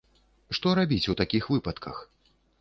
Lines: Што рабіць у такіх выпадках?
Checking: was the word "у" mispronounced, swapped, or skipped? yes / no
no